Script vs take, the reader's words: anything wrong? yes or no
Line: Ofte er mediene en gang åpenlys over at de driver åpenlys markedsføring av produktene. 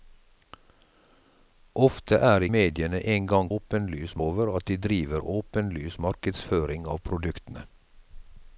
no